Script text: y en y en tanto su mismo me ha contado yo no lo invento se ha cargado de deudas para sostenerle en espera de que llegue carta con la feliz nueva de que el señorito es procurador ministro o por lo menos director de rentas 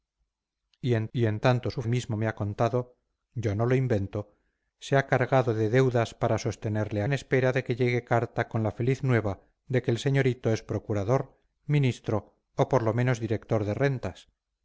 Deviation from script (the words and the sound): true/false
false